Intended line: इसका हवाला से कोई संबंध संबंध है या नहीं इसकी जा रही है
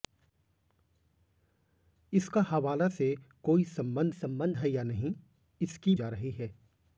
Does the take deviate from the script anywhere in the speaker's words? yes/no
no